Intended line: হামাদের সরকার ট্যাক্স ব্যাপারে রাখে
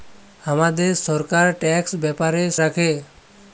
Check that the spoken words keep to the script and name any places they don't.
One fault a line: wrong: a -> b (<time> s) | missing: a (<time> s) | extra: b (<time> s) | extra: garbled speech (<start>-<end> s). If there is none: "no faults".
no faults